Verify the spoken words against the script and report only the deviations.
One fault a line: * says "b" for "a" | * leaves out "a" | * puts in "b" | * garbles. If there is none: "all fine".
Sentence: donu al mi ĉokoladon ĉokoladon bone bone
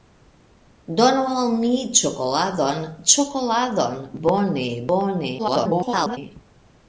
* garbles